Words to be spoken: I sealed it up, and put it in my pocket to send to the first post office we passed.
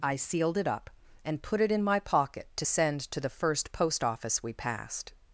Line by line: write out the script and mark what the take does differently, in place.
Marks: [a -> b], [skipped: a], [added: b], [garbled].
I sealed it up, and put it in my pocket to send to the first post office we passed.